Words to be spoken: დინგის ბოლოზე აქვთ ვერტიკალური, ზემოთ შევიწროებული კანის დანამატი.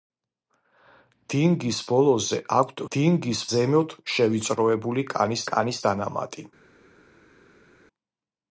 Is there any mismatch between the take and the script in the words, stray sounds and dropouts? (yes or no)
yes